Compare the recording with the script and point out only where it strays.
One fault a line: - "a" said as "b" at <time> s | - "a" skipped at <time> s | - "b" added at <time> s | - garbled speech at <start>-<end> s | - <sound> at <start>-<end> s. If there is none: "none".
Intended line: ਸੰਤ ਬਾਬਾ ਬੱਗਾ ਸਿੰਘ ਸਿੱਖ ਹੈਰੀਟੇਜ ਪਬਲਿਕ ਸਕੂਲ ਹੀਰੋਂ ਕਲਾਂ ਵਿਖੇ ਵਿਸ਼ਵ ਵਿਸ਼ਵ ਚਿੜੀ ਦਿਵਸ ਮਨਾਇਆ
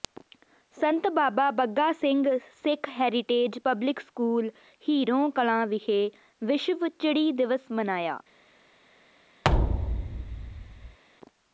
- "ਵਿਸ਼ਵ" skipped at 6.9 s
- thud at 9.4-11.0 s